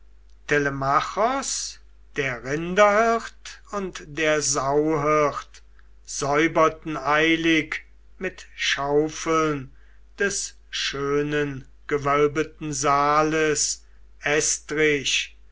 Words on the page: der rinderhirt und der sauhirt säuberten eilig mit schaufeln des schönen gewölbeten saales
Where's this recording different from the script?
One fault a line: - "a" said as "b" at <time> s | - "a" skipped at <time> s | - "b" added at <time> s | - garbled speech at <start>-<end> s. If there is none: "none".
none